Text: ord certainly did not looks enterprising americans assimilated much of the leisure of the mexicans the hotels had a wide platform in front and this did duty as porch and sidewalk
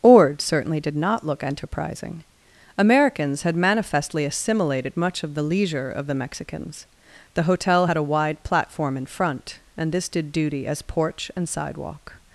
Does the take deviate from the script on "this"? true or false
false